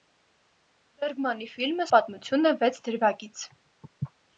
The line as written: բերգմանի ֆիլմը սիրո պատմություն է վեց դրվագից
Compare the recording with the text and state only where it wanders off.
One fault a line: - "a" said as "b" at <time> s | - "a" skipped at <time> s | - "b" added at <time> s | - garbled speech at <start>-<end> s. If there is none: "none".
- "սիրո" skipped at 1.9 s